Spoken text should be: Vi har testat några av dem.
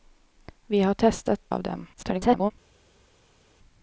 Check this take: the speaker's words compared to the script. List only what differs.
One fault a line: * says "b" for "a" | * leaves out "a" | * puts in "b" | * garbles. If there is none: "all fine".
* leaves out "några"
* garbles